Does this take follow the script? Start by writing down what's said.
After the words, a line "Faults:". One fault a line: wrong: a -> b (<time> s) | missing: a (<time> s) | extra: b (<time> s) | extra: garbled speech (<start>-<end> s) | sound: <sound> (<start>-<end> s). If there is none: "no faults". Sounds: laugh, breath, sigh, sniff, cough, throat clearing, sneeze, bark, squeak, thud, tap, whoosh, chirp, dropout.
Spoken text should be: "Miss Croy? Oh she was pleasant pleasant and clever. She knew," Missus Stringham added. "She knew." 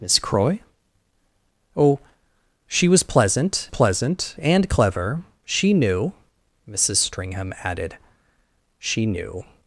"Miss Croy? Oh she was pleasant pleasant and clever. She knew," Missus Stringham added. "She knew."
Faults:
no faults